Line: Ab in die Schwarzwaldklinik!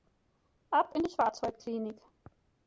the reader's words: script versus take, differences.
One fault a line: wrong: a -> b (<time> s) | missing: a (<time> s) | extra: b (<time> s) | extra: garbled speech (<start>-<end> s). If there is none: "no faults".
no faults